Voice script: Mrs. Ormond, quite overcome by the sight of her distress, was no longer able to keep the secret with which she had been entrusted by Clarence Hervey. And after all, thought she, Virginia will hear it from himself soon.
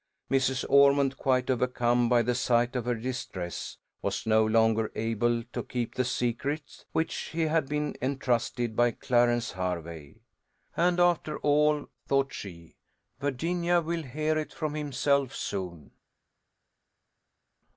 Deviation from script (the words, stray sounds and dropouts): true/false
false